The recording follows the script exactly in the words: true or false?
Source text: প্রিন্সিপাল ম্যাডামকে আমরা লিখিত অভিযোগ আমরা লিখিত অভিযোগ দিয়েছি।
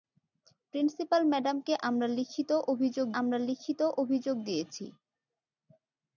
true